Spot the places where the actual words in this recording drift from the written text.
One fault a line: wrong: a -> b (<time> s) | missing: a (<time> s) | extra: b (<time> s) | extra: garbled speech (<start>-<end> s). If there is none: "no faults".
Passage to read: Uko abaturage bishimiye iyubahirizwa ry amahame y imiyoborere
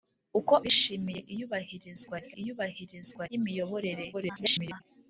missing: abaturage (0.5 s)
wrong: amahame -> iyubahirizwa (2.4 s)
extra: garbled speech (4.1-4.8 s)